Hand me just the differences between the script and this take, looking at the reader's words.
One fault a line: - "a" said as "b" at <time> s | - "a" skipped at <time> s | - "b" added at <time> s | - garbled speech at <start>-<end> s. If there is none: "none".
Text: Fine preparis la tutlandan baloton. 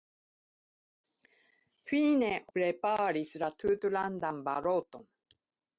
none